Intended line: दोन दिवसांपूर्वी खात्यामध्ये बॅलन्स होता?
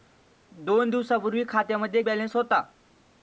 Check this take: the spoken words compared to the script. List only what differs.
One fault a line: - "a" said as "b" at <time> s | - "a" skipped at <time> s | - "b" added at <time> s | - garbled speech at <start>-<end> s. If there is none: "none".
none